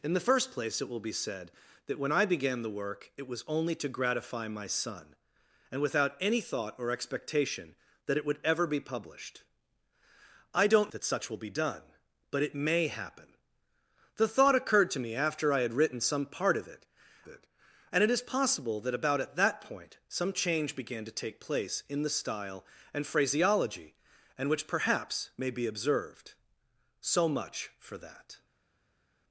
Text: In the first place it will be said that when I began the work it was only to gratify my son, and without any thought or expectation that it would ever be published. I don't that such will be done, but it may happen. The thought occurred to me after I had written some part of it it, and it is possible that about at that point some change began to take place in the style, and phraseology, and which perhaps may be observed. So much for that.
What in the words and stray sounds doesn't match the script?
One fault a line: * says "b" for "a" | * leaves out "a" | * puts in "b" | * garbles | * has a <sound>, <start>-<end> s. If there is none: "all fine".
all fine